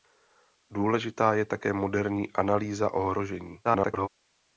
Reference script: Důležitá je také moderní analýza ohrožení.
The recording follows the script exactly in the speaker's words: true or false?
false